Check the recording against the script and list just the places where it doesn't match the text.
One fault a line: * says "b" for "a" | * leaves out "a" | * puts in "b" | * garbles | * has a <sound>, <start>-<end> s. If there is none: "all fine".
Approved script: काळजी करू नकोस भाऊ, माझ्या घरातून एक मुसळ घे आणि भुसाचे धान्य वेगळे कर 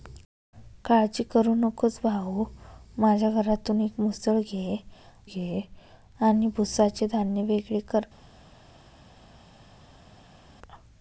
* puts in "घे"